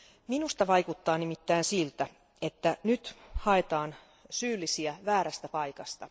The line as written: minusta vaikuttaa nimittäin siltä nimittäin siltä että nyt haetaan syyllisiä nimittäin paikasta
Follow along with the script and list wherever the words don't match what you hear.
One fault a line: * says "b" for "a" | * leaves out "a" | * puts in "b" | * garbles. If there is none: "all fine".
* leaves out "nimittäin siltä"
* says "väärästä" for "nimittäin"